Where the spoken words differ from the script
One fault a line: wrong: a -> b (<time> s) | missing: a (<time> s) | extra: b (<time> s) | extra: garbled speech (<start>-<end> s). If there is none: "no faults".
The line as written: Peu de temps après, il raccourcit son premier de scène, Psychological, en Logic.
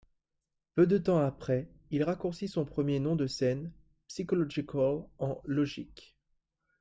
extra: nom (3.0 s)